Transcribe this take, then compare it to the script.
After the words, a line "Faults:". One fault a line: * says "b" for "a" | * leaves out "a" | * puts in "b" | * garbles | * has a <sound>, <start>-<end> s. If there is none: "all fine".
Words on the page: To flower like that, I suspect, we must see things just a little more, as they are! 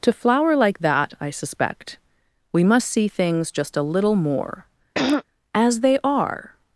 To flower like that, I suspect, we must see things just a little more, as they are!
Faults:
* has a throat clearing, 4.9-5.2 s